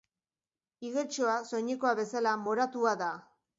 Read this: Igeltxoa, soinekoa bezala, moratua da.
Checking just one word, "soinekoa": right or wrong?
right